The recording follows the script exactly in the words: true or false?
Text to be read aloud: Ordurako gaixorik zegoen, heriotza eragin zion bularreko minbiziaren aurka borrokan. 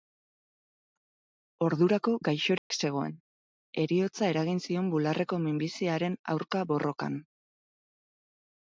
true